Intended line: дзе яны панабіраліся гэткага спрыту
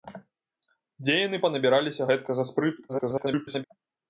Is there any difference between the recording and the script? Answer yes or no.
yes